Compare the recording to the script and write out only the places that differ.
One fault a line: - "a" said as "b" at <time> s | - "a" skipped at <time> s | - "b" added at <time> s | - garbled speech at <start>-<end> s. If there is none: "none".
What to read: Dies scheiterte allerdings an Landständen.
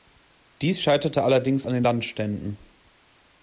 - "den" added at 1.7 s